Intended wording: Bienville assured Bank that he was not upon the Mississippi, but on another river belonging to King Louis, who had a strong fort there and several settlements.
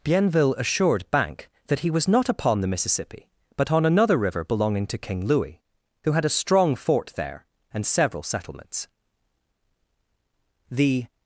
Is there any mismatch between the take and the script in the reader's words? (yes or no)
yes